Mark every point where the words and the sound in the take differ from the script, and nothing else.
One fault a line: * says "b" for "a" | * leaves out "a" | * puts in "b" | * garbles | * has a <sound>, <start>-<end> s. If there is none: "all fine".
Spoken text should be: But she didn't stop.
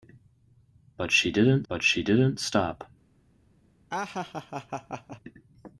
* puts in "but she didn't"
* has a laugh, 3.9-5.2 s